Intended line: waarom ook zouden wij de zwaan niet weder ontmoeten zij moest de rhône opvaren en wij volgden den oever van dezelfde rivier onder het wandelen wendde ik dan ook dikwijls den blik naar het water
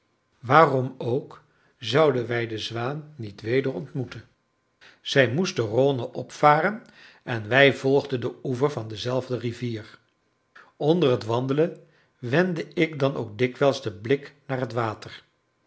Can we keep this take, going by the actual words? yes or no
yes